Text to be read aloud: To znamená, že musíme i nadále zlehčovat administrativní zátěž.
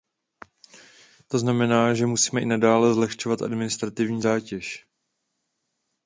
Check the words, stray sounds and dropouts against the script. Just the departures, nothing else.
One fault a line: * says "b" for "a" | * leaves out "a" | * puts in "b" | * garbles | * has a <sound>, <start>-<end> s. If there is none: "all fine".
all fine